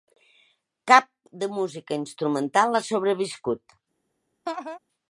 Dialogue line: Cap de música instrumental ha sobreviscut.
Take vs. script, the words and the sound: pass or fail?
fail